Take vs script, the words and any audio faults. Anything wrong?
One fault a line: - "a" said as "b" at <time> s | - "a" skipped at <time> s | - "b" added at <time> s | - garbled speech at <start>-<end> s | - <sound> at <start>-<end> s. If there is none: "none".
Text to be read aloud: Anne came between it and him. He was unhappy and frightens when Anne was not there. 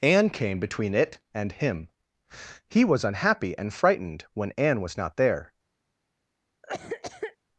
- "frightens" said as "frightened" at 3.7 s
- cough at 6.6-7.4 s